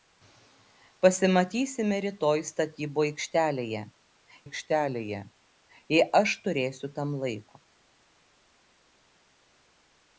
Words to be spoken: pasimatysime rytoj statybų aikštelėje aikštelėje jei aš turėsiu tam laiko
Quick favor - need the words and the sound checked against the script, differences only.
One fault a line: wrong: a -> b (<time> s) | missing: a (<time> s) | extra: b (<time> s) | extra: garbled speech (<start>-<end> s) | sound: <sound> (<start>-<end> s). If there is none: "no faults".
no faults